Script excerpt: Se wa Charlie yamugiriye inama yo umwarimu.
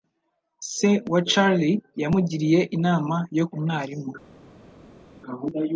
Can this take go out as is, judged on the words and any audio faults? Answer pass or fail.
pass